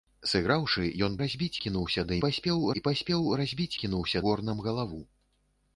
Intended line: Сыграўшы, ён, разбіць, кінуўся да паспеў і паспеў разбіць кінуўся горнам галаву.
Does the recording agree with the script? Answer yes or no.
yes